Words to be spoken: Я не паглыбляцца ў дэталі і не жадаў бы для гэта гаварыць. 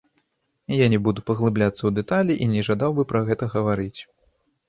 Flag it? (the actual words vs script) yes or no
yes